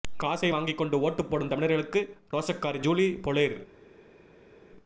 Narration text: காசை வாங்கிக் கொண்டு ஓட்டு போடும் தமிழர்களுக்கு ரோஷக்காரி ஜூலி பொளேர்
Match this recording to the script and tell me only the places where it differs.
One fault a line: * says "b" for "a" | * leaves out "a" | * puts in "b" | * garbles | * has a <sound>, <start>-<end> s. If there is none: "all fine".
all fine